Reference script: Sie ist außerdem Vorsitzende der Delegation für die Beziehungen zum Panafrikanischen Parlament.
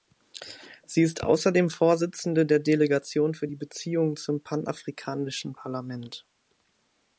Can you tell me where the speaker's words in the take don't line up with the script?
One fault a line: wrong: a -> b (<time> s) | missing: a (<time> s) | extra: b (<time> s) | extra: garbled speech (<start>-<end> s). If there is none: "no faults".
no faults